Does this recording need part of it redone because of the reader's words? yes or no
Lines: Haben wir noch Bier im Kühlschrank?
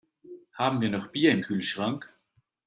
no